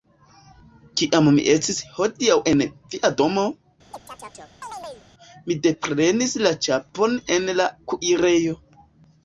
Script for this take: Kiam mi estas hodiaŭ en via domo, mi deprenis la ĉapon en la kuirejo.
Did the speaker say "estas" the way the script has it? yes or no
no